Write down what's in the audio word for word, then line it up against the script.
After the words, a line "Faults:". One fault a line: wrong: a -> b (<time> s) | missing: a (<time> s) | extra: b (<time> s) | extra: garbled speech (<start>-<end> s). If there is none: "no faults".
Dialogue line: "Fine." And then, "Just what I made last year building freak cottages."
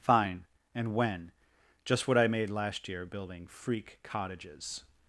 "Fine." And when, "Just what I made last year building freak cottages."
Faults:
wrong: then -> when (0.9 s)